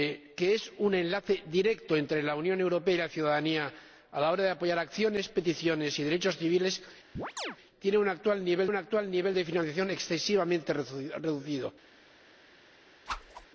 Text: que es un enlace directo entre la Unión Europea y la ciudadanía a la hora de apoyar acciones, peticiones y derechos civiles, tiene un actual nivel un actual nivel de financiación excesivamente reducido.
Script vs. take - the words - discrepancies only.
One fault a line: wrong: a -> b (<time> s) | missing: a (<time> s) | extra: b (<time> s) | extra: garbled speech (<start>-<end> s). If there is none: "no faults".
no faults